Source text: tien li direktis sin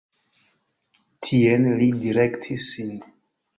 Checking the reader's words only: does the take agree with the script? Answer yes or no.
yes